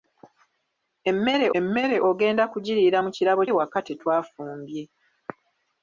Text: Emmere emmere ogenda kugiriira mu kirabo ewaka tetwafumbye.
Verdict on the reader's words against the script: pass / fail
pass